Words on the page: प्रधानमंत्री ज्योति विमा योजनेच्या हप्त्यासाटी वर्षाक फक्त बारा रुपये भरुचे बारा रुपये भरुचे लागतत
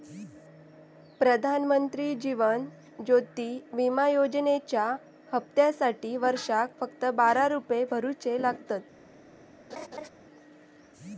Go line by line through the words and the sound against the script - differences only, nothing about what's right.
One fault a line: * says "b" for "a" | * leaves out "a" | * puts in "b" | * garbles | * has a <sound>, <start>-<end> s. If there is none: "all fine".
* puts in "जीवन"
* leaves out "बारा रुपये भरुचे"
* has a laugh, 9.7-10.1 s